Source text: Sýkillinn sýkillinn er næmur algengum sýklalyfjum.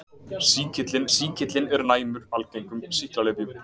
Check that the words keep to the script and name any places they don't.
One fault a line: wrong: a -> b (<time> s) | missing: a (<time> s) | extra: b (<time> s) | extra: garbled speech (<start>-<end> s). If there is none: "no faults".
no faults